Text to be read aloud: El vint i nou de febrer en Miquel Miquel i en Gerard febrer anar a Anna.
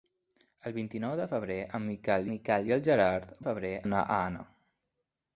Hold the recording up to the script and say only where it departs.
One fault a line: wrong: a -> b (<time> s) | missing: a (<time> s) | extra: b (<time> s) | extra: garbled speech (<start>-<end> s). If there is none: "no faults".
no faults